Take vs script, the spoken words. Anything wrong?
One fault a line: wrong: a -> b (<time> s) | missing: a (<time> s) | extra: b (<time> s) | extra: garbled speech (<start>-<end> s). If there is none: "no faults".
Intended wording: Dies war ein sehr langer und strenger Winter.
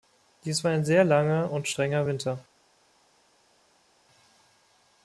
no faults